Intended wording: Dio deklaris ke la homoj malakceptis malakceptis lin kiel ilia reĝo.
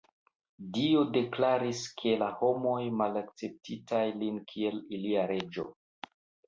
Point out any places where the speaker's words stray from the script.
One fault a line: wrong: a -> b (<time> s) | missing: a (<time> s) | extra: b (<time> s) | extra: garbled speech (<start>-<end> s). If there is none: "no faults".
missing: malakceptis (3.9 s)